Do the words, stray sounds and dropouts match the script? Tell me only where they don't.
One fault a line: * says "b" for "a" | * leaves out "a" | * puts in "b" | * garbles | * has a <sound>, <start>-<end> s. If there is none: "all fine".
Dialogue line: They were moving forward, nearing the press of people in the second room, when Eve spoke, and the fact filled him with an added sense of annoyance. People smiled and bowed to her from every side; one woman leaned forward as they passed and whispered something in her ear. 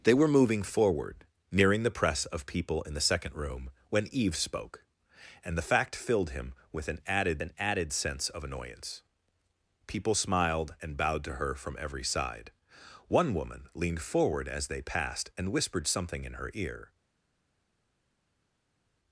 * puts in "an added"